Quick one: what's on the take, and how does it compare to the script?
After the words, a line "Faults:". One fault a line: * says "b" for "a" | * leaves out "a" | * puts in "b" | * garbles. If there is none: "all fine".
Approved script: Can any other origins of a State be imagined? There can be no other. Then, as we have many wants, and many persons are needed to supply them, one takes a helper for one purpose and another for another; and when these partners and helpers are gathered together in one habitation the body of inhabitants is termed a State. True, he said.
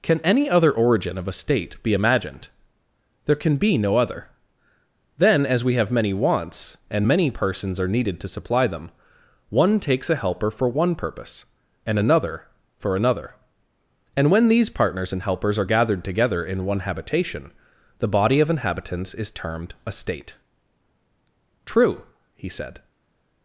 Can any other origin of a State be imagined? There can be no other. Then, as we have many wants, and many persons are needed to supply them, one takes a helper for one purpose and another for another; and when these partners and helpers are gathered together in one habitation the body of inhabitants is termed a State. True, he said.
Faults:
* says "origin" for "origins"